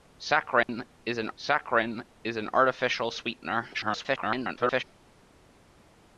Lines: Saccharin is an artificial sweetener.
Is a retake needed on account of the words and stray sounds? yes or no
yes